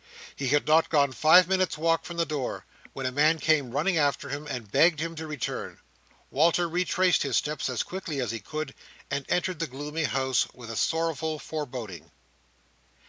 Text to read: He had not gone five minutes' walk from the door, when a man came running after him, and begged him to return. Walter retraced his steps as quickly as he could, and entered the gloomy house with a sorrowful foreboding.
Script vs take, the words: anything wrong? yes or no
no